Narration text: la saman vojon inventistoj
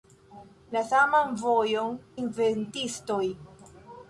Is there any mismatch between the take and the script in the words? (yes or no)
no